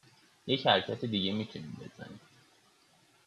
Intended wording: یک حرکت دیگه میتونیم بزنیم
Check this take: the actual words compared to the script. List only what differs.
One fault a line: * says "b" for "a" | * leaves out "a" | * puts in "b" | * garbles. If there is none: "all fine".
all fine